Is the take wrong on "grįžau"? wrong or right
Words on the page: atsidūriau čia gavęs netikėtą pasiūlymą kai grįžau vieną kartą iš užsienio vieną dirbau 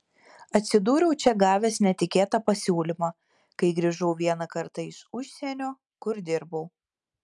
right